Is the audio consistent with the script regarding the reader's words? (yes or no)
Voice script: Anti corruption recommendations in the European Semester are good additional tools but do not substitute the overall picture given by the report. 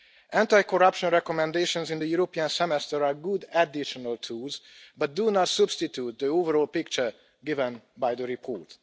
yes